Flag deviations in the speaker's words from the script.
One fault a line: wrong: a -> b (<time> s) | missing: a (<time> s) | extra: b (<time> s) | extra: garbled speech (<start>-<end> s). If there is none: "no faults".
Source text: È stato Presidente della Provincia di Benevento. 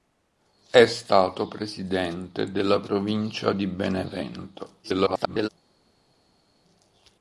extra: garbled speech (4.8-5.5 s)